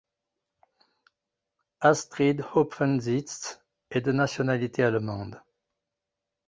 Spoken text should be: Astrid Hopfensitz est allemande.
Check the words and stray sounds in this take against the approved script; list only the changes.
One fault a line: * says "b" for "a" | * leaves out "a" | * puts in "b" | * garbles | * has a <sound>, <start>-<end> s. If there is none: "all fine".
* puts in "de nationalité"